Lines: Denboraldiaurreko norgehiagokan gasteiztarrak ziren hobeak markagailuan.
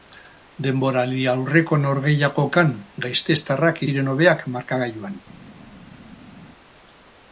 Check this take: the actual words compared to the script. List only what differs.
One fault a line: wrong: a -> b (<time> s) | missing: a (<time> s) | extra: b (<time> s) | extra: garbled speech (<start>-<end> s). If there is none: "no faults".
no faults